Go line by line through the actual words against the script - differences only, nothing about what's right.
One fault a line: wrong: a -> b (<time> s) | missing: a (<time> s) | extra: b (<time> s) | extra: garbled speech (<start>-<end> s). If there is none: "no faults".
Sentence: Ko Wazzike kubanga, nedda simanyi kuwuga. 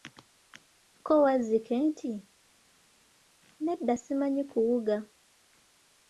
wrong: kubanga -> nti (1.9 s)